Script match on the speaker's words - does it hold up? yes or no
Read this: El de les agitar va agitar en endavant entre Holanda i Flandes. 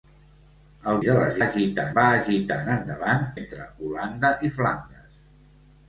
yes